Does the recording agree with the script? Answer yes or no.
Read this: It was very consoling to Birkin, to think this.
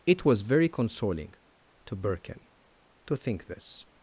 yes